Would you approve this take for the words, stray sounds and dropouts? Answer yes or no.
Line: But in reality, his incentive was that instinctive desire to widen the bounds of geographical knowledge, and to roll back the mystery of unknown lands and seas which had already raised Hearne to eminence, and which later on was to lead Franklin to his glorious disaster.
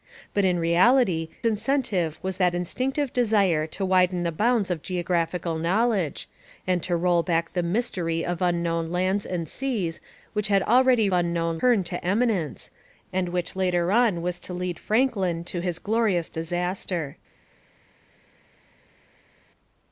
no